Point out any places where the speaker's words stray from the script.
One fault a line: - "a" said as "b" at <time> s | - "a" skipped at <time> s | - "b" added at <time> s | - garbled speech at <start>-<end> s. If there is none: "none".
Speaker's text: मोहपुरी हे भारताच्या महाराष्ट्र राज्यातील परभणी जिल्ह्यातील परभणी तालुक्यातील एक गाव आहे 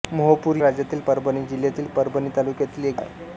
- "हे भारताच्या महाराष्ट्र" skipped at 0.6 s
- "गाव" skipped at 3.0 s